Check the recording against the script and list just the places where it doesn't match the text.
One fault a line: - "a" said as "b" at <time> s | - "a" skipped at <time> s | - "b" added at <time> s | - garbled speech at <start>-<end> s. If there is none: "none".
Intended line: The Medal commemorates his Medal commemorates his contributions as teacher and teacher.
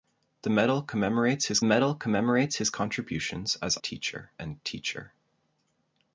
none